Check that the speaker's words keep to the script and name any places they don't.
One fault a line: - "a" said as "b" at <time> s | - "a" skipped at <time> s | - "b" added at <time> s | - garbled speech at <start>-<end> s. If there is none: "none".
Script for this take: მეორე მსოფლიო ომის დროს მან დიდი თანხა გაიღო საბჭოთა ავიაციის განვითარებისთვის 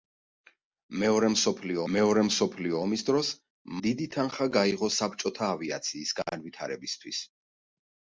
- "მეორე მსოფლიო" added at 1.9 s
- "მან" skipped at 3.3 s